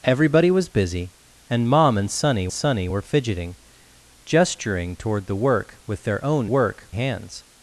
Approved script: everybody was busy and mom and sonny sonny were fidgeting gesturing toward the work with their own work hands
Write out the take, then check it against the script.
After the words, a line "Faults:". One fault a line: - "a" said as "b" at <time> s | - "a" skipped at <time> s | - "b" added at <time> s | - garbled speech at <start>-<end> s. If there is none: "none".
everybody was busy and mom and sonny sonny were fidgeting gesturing toward the work with their own work hands
Faults:
none